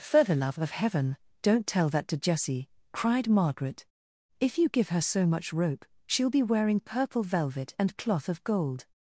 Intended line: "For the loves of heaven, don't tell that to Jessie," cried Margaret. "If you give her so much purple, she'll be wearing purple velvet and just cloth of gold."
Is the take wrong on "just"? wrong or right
wrong